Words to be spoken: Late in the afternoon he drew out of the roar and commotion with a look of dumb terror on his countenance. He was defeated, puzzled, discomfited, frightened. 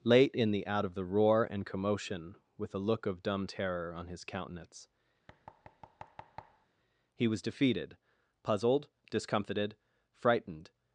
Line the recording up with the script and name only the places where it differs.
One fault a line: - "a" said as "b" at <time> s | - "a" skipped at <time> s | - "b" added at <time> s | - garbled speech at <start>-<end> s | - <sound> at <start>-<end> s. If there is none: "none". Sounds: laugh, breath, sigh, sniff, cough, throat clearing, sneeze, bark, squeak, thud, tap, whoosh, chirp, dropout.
- "afternoon he drew" skipped at 0.7 s
- thud at 5.3-6.7 s